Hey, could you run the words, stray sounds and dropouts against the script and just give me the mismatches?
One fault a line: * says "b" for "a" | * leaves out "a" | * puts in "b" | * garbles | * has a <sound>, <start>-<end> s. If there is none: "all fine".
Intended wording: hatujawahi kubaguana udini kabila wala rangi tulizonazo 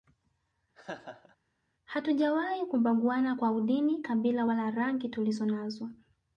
* has a laugh, 0.7-1.4 s
* puts in "kwa"